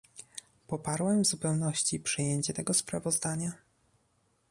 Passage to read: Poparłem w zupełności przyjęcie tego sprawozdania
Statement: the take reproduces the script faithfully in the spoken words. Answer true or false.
true